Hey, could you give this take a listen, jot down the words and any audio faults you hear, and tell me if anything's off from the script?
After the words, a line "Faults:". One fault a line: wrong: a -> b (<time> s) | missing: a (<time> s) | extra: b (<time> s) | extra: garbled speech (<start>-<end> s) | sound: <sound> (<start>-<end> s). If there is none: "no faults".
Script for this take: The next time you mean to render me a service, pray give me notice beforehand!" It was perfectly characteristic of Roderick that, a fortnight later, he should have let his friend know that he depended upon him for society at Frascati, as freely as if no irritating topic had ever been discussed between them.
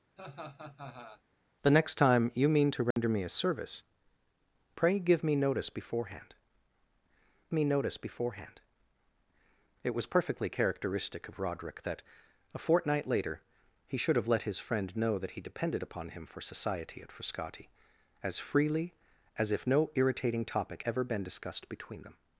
The next time you mean to render me a service, pray give me notice beforehand me notice beforehand!" It was perfectly characteristic of Roderick that, a fortnight later, he should have let his friend know that he depended upon him for society at Frascati, as freely as if no irritating topic ever been discussed between them.
Faults:
sound: laugh (0.2-1.2 s)
sound: dropout (2.9-3.0 s)
extra: me notice beforehand (7.5 s)
missing: had (20.8 s)